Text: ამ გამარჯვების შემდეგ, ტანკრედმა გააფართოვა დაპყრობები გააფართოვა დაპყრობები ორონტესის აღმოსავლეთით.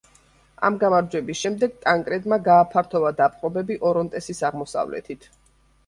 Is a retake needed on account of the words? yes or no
yes